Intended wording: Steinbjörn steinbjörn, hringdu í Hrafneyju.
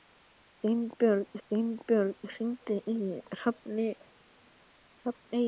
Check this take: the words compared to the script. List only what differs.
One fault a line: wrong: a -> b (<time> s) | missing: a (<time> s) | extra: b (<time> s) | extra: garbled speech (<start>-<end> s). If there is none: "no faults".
no faults